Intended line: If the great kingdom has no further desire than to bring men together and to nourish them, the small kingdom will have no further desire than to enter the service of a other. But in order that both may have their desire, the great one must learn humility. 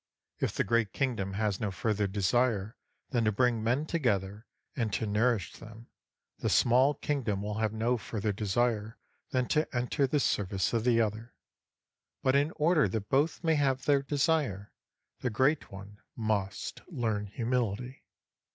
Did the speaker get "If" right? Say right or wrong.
right